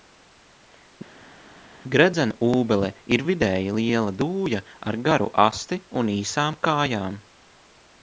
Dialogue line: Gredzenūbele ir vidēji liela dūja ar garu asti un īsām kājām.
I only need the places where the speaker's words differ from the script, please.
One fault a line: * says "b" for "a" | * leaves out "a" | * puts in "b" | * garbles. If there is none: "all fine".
all fine